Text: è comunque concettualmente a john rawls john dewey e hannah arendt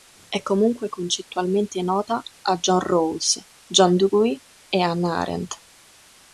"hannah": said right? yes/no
yes